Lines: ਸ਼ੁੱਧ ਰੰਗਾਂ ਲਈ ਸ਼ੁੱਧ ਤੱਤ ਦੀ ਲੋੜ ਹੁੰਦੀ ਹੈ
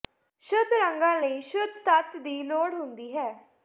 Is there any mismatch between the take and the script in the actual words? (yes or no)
no